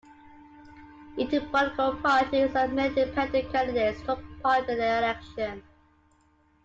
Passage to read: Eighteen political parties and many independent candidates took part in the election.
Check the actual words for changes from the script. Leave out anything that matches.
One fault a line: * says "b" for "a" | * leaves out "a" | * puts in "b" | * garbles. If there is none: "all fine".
all fine